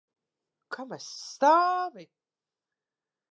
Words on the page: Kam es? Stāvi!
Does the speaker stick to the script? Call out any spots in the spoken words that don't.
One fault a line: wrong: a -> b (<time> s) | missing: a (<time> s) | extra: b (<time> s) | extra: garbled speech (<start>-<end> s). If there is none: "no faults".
no faults